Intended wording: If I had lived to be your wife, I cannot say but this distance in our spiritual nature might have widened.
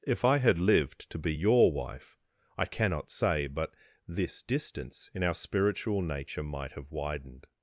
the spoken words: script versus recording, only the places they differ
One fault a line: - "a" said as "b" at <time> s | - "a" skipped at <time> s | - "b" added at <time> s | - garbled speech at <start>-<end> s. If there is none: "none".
none